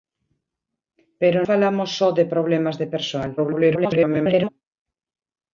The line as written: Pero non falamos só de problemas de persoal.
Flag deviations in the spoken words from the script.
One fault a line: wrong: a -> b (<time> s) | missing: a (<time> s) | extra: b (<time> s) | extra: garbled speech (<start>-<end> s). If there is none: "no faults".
missing: non (1.4 s)
extra: garbled speech (3.4-4.5 s)